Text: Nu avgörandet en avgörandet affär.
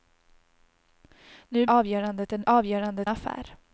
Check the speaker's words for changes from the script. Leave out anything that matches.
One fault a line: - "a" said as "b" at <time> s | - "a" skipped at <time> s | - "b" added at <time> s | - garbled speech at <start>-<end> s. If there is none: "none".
none